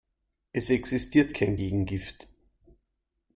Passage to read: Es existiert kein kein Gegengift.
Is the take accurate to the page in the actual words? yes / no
no